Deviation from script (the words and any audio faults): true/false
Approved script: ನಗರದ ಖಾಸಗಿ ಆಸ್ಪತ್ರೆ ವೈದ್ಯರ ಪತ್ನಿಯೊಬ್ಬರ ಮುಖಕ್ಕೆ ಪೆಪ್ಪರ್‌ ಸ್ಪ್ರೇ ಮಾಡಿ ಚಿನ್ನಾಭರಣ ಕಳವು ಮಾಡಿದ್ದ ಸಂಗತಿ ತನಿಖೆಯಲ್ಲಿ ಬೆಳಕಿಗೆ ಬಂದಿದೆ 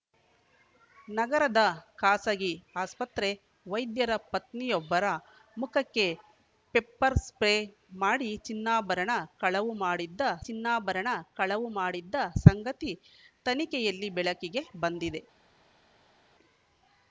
true